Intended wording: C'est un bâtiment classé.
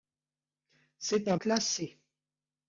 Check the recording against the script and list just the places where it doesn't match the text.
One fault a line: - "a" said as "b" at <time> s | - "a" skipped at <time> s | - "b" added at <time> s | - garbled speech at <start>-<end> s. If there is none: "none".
- "bâtiment" skipped at 1.4 s